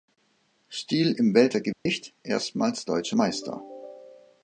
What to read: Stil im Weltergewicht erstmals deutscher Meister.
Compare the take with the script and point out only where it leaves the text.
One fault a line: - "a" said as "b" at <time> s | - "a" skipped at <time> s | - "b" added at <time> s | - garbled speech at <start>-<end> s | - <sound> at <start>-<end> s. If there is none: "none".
- dropout at 1.7-1.9 s